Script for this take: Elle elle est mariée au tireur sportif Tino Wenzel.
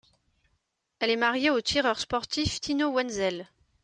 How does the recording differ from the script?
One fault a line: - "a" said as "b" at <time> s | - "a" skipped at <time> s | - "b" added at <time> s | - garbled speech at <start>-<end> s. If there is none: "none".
- "elle" skipped at 1.1 s